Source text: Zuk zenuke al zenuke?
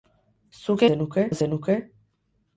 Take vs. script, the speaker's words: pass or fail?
pass